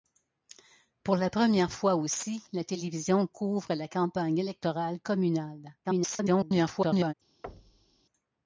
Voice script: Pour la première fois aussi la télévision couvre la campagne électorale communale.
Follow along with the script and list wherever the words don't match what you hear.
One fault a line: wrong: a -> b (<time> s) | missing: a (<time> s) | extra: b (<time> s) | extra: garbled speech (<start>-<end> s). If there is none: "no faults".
extra: garbled speech (5.8-7.1 s)